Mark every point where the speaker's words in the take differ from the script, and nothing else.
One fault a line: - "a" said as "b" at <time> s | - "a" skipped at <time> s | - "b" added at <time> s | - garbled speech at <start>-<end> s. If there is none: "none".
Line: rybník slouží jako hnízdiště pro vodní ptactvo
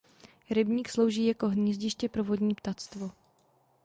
none